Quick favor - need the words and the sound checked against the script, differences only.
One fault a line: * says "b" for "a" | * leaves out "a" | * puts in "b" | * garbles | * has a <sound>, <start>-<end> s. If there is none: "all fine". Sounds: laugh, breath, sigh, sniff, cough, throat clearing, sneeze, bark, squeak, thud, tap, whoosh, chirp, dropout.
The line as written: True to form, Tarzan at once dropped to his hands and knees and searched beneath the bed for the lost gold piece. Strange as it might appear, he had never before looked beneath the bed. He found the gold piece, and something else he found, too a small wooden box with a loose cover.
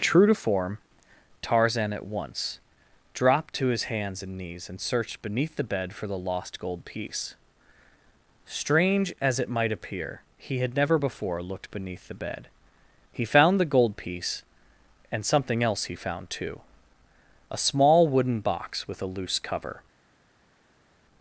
all fine